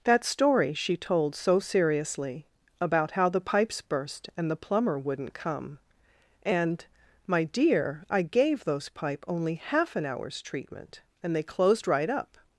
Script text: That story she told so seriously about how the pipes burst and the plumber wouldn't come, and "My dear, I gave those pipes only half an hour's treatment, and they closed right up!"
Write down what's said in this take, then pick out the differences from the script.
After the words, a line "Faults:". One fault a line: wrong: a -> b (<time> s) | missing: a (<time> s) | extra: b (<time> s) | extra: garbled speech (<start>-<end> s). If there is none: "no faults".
That story she told so seriously about how the pipes burst and the plumber wouldn't come, and "My dear, I gave those pipe only half an hour's treatment, and they closed right up!"
Faults:
wrong: pipes -> pipe (8.9 s)